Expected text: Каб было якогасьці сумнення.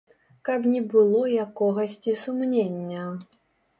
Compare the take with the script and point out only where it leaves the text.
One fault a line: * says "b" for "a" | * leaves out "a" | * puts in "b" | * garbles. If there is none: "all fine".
* puts in "не"